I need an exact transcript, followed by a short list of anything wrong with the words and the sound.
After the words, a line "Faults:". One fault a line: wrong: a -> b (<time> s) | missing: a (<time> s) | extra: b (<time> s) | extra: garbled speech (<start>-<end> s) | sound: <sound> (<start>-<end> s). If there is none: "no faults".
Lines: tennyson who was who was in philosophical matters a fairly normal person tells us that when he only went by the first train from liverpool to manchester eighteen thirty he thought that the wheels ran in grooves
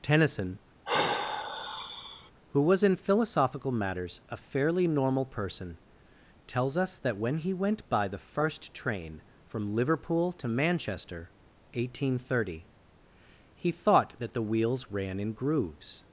tennyson who was in philosophical matters a fairly normal person tells us that when he went by the first train from liverpool to manchester eighteen thirty he thought that the wheels ran in grooves
Faults:
sound: sigh (0.8-2.3 s)
missing: who was (2.8 s)
missing: only (7.5 s)